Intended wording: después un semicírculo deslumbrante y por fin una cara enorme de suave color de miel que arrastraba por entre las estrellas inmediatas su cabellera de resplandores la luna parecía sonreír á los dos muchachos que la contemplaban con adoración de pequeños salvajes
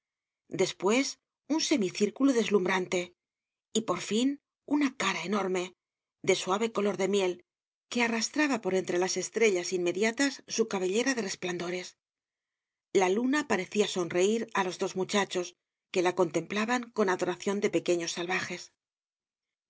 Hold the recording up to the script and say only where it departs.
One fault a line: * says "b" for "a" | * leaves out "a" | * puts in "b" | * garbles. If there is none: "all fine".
all fine